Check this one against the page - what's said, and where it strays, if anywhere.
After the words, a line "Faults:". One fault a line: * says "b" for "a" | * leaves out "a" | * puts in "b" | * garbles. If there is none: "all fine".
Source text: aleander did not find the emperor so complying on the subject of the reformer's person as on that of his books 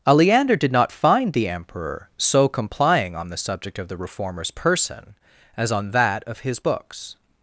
aleander did not find the emperor so complying on the subject of the reformer's person as on that of his books
Faults:
all fine